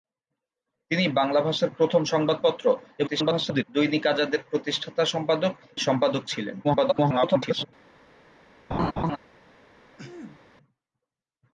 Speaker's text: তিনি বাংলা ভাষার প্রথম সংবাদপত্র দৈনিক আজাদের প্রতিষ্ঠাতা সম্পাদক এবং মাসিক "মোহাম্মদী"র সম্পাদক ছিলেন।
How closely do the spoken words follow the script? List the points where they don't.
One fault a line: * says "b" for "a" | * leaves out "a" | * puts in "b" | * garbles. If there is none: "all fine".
* garbles
* leaves out "এবং মাসিক মোহাম্মদী"র"
* garbles